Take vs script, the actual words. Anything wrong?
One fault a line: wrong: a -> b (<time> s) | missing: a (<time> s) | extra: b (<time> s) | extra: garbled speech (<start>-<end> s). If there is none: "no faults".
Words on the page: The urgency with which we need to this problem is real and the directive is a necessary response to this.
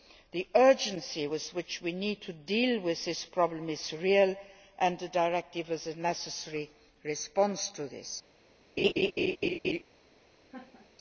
extra: deal with (2.3 s)